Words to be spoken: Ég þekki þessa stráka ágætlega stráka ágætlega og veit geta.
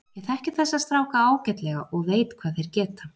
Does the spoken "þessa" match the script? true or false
true